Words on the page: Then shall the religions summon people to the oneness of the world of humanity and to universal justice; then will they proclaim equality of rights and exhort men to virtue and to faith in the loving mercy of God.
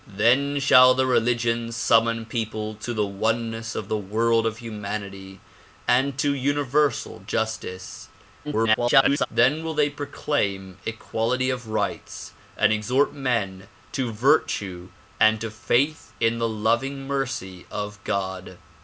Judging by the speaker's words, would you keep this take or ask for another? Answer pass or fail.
fail